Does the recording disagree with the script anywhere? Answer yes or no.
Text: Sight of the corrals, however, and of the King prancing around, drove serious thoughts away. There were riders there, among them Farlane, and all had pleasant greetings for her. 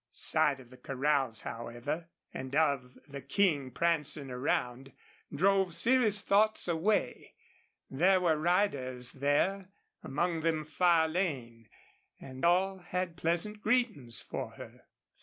no